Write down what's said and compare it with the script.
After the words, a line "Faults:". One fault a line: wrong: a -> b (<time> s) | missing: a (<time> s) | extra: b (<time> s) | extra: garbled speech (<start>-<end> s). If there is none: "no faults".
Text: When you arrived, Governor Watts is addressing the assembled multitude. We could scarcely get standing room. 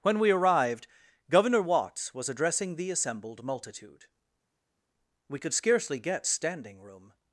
When we arrived, Governor Watts was addressing the assembled multitude. We could scarcely get standing room.
Faults:
wrong: you -> we (0.2 s)
wrong: is -> was (2.1 s)